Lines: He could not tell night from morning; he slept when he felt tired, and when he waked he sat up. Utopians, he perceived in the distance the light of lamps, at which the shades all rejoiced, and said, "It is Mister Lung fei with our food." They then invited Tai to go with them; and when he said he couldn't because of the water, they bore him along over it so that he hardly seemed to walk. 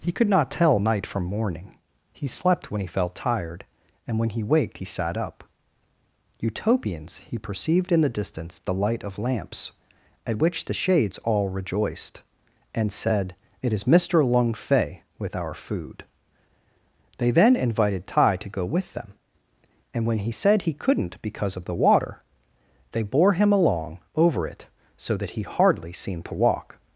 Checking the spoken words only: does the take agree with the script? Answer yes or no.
yes